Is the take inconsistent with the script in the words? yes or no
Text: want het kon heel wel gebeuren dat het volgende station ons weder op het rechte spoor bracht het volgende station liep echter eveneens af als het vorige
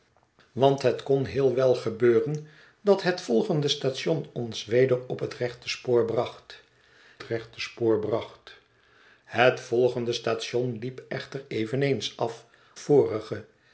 yes